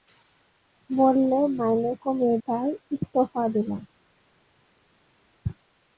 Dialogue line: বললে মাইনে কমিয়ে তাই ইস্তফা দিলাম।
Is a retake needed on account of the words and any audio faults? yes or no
no